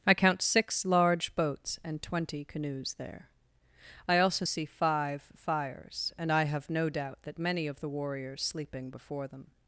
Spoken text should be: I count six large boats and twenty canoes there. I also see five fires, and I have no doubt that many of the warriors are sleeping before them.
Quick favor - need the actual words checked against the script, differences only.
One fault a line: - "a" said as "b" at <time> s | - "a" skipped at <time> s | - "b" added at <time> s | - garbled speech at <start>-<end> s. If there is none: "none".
- "are" skipped at 8.4 s